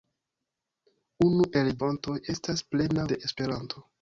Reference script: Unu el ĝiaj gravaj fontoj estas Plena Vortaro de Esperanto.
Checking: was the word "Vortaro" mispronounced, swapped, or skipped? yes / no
yes